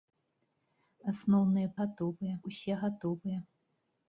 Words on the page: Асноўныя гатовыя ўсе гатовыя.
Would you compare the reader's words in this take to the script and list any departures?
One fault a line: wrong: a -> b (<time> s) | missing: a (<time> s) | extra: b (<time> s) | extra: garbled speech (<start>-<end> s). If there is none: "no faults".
no faults